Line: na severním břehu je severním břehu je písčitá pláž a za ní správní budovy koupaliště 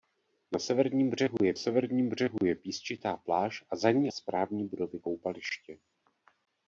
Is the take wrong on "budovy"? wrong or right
right